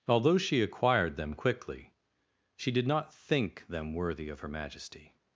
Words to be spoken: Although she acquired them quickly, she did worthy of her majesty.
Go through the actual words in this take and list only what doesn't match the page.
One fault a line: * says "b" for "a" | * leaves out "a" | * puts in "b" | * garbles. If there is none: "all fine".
* puts in "not think them"